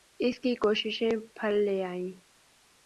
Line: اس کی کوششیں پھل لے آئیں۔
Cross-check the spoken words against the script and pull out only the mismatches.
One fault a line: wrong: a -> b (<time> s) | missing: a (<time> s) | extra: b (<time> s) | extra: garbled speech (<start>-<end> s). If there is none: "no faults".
no faults